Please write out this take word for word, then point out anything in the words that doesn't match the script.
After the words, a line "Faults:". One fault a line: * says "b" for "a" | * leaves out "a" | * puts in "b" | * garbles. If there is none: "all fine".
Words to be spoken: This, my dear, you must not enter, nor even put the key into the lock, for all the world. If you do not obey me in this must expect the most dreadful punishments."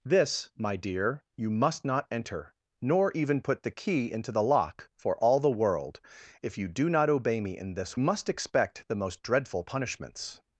This, my dear, you must not enter, nor even put the key into the lock, for all the world. If you do not obey me in this must expect the most dreadful punishments."
Faults:
all fine